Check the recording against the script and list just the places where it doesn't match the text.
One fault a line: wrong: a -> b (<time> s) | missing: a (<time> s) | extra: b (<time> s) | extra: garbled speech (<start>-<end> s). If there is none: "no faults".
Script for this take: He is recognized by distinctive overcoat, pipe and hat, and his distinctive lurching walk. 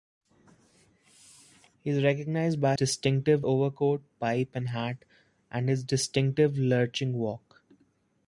no faults